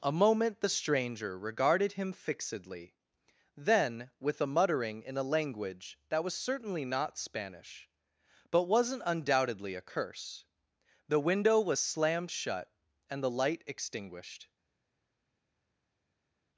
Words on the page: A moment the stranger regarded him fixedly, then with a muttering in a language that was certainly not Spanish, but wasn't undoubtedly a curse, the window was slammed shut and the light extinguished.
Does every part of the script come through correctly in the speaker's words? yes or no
yes